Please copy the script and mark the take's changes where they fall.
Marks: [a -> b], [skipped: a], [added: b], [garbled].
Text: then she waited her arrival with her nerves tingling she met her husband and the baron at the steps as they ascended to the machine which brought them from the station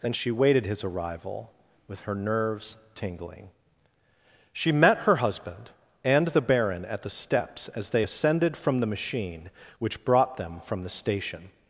then she waited [her -> his] arrival with her nerves tingling she met her husband and the baron at the steps as they ascended [to -> from] the machine which brought them from the station